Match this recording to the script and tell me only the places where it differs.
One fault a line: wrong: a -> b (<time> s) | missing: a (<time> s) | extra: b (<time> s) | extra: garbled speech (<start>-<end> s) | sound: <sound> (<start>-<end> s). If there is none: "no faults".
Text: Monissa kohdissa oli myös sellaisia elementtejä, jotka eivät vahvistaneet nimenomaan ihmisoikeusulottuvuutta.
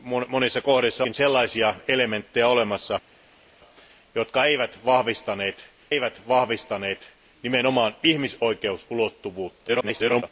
missing: oli myös (1.1 s)
extra: eivät vahvistaneet (5.9 s)
extra: garbled speech (9.7-10.2 s)